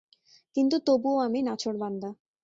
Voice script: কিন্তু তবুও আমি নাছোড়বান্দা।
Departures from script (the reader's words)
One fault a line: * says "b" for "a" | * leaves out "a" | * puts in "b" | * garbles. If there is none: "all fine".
all fine